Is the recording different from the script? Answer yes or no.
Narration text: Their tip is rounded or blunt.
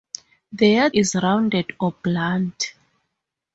yes